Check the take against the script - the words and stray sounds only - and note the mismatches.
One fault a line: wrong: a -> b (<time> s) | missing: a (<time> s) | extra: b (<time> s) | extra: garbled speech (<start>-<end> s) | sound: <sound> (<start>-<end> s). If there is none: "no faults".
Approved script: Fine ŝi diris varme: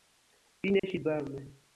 sound: dropout (0.8-0.8 s)
missing: diris (1.0 s)